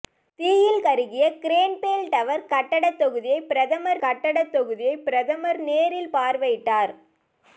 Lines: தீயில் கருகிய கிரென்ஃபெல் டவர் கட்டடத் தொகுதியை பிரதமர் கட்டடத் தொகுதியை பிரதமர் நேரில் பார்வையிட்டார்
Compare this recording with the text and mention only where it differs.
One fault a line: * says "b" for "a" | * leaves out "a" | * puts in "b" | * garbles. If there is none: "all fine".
all fine